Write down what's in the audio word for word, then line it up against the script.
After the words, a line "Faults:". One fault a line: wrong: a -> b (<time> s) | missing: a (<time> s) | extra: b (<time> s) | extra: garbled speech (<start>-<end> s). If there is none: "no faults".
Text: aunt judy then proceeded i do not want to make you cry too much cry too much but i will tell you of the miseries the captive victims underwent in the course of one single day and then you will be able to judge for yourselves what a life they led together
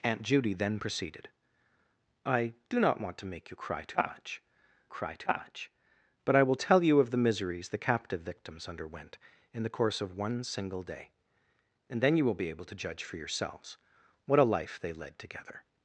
aunt judy then proceeded i do not want to make you cry too much cry too much but i will tell you of the miseries the captive victims underwent in the course of one single day and then you will be able to judge for yourselves what a life they led together
Faults:
no faults